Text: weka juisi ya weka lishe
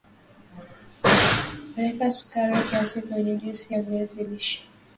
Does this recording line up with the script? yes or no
no